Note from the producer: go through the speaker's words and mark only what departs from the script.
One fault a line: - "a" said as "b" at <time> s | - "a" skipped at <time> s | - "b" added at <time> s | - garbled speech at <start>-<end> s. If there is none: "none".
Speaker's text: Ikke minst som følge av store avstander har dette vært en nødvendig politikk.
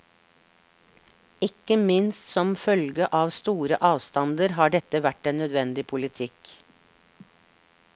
none